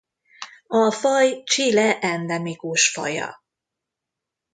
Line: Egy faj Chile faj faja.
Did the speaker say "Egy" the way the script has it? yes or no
no